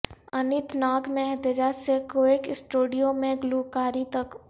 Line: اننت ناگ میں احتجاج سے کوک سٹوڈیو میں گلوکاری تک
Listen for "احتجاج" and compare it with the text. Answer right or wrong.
right